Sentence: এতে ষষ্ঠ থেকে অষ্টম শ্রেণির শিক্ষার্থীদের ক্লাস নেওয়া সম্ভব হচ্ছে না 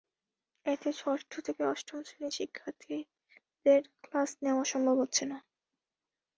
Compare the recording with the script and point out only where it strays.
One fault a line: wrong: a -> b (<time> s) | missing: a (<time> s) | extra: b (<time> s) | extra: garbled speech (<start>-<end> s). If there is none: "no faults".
no faults